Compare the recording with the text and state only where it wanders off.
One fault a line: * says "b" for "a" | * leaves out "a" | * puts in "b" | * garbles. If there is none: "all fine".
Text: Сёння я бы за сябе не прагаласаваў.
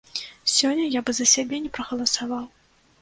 all fine